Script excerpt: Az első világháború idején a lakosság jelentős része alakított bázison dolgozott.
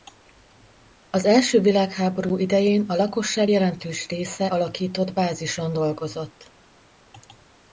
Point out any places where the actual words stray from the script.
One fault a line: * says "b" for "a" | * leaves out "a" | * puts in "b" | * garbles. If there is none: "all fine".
all fine